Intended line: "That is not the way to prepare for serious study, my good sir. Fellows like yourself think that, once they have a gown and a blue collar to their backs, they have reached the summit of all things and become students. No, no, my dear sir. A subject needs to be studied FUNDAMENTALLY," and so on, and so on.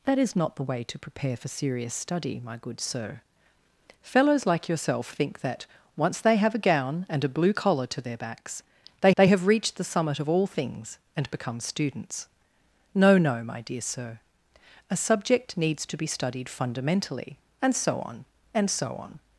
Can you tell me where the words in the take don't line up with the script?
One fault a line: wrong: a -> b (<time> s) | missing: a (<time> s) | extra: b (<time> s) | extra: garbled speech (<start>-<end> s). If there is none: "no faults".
extra: they (9.2 s)